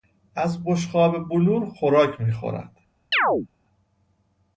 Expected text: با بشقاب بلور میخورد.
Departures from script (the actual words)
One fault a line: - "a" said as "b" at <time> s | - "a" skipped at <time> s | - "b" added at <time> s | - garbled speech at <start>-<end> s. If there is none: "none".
- "با" said as "از" at 0.3 s
- "خوراک" added at 1.7 s